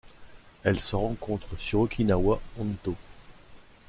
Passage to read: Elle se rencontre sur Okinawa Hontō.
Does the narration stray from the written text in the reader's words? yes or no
no